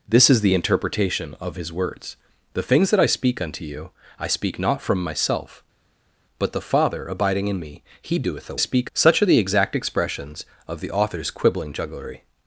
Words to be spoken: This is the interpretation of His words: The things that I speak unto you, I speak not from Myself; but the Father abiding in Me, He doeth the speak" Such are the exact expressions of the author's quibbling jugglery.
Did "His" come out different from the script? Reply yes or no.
no